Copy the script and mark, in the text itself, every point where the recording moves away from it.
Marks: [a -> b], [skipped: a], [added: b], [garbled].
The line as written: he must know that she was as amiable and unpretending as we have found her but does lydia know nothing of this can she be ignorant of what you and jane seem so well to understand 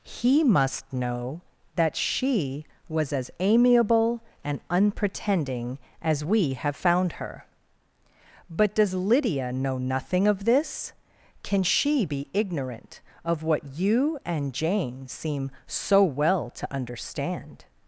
he must know that she was as amiable and unpretending as we have found her but does lydia know nothing of this can she be ignorant of what you and jane seem so well to understand